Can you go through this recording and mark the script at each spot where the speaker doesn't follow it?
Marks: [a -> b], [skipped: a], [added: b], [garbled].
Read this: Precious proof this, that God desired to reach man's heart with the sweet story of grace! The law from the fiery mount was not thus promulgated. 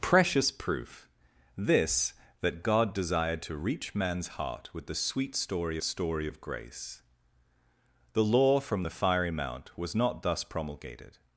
Precious proof this, that God desired to reach man's heart with the sweet story [added: story] of grace! The law from the fiery mount was not thus promulgated.